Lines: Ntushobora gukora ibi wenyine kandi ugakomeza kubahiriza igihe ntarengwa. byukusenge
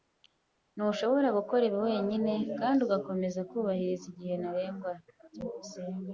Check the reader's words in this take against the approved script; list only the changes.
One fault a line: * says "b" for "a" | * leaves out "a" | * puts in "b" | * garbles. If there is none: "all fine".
all fine